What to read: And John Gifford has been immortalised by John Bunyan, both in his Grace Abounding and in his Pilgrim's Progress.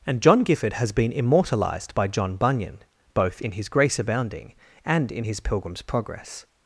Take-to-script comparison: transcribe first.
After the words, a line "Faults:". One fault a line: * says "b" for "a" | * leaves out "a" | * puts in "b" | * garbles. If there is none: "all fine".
And John Gifford has been immortalised by John Bunyan, both in his Grace Abounding and in his Pilgrim's Progress.
Faults:
all fine